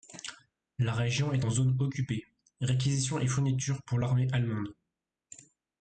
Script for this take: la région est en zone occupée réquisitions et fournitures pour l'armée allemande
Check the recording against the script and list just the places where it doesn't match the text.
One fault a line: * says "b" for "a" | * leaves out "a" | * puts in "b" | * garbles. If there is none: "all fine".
all fine